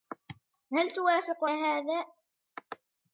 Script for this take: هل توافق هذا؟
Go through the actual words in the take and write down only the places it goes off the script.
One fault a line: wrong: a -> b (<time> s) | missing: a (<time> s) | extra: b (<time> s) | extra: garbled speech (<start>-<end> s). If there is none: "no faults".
no faults